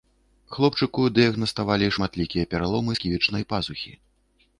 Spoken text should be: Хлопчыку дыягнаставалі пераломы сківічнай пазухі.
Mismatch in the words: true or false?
true